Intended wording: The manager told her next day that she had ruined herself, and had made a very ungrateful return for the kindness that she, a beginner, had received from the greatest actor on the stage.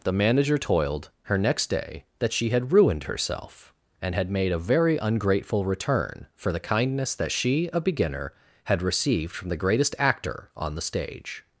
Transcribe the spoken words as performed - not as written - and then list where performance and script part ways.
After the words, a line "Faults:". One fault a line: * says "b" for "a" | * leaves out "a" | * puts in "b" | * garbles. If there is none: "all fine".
The manager toiled her next day that she had ruined herself, and had made a very ungrateful return for the kindness that she, a beginner, had received from the greatest actor on the stage.
Faults:
* says "toiled" for "told"